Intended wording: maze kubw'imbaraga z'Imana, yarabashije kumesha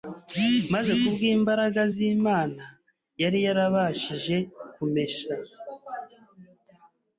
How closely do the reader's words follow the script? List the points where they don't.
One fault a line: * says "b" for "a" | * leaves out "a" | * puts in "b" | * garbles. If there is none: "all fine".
* puts in "yari"